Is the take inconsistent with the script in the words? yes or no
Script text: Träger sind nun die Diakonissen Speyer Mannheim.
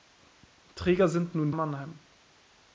yes